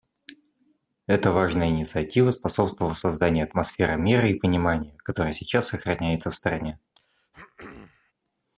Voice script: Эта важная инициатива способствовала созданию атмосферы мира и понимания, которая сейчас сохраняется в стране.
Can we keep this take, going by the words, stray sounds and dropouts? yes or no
no